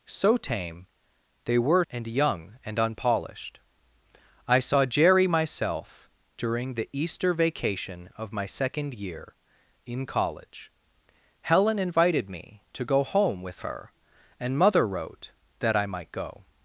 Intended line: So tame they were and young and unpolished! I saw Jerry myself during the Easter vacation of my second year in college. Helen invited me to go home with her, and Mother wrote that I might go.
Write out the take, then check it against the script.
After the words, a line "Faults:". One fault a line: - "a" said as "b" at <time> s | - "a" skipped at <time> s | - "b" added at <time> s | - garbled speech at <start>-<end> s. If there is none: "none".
So tame they were and young and unpolished! I saw Jerry myself during the Easter vacation of my second year in college. Helen invited me to go home with her, and Mother wrote that I might go.
Faults:
none